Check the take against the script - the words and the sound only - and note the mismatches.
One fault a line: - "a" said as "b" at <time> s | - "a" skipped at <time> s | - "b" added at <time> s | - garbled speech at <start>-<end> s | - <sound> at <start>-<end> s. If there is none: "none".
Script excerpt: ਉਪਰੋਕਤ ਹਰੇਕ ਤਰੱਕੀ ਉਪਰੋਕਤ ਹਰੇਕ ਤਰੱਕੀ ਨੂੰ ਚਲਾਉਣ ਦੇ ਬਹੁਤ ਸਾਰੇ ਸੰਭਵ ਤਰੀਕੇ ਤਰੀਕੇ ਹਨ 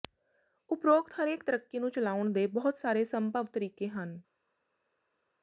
- "ਉਪਰੋਕਤ ਹਰੇਕ ਤਰੱਕੀ" skipped at 1.8 s
- "ਤਰੀਕੇ" skipped at 3.9 s